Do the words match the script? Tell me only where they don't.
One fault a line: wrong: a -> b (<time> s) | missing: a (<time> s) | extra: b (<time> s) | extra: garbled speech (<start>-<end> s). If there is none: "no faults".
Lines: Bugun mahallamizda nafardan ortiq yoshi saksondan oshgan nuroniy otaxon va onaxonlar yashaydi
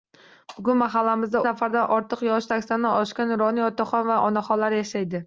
no faults